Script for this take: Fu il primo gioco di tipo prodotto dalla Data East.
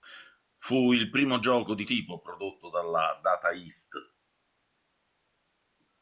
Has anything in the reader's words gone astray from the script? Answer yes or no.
no